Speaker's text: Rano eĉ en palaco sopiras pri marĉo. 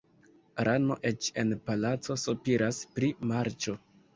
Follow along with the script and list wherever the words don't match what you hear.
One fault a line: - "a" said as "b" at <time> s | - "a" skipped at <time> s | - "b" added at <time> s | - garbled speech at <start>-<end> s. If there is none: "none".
none